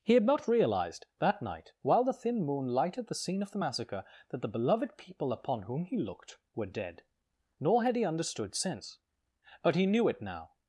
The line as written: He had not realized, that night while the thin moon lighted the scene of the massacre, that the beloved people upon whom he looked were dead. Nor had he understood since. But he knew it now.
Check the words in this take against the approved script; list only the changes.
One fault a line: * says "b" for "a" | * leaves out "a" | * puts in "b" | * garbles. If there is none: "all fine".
all fine